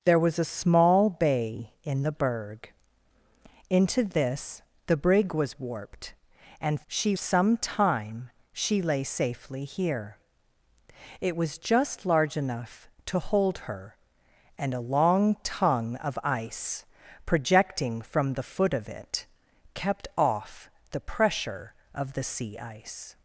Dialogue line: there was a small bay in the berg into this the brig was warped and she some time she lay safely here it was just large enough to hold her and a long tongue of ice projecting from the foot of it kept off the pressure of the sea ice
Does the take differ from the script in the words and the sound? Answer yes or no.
no